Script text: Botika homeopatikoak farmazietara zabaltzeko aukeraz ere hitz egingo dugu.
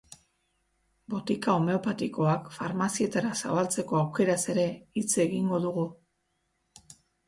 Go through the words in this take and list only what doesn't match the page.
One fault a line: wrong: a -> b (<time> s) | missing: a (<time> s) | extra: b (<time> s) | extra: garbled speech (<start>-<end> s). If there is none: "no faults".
no faults